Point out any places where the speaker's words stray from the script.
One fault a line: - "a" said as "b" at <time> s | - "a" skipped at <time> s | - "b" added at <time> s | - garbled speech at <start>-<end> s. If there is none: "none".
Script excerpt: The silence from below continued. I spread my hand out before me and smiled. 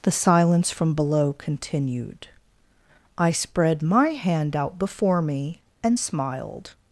none